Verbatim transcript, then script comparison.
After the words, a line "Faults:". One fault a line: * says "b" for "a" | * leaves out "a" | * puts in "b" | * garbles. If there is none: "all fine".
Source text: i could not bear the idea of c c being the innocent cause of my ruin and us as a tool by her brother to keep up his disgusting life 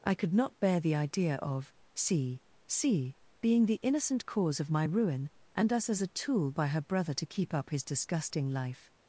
i could not bear the idea of c c being the innocent cause of my ruin and us as a tool by her brother to keep up his disgusting life
Faults:
all fine